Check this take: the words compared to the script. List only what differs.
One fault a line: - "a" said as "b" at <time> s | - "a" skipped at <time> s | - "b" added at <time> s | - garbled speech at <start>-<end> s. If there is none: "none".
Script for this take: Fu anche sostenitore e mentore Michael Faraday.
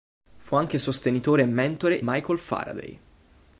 none